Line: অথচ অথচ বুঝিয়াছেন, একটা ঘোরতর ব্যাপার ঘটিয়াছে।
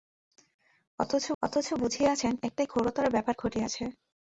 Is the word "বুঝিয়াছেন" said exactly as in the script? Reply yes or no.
yes